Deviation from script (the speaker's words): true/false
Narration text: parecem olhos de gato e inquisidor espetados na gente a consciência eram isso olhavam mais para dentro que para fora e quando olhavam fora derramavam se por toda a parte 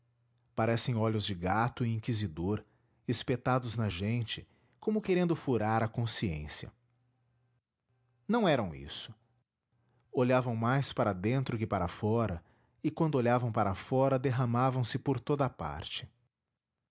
true